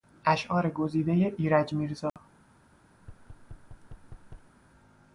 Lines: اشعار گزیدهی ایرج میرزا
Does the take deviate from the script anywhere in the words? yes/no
no